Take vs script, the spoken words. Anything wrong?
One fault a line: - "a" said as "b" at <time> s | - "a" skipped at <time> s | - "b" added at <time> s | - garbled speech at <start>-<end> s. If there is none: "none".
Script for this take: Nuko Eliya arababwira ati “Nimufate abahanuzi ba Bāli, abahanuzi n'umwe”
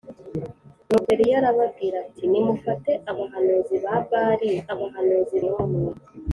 none